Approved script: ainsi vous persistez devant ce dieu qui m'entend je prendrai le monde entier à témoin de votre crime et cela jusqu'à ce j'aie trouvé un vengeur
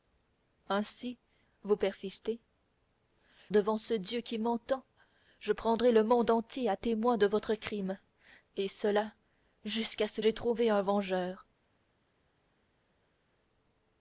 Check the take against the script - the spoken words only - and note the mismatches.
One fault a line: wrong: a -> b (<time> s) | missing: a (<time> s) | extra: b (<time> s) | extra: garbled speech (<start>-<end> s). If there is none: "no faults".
no faults